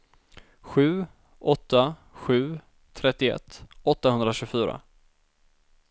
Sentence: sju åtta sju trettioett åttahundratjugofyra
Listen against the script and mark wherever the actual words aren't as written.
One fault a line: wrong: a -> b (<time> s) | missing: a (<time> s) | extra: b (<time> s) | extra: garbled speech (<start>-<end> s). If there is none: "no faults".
no faults